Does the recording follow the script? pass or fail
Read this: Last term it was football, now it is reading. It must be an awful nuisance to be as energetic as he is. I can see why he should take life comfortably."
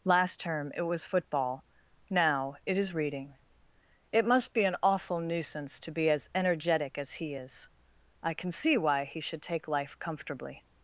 pass